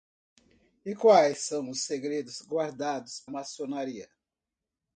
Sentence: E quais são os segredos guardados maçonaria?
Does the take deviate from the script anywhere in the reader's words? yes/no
no